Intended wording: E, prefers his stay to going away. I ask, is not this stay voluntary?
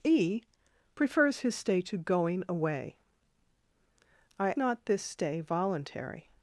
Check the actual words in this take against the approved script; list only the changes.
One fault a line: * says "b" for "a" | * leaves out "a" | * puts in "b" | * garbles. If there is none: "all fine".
* leaves out "ask is"